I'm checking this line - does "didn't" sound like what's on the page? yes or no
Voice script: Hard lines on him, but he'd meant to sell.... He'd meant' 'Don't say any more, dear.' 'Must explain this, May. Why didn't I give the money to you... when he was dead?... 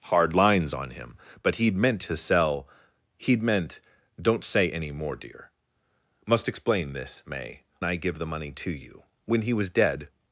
no